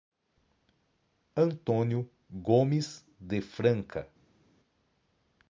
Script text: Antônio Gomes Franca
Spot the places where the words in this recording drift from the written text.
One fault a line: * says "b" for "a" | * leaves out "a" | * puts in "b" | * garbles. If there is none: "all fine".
* puts in "de"